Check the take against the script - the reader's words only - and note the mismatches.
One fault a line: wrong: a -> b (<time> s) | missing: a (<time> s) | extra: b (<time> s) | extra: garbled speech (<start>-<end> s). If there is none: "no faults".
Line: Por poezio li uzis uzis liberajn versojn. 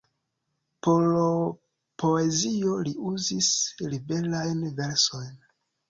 missing: uzis (3.5 s)